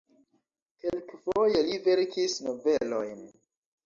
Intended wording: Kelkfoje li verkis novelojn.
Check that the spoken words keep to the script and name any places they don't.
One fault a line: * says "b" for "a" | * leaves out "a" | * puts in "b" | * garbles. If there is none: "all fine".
all fine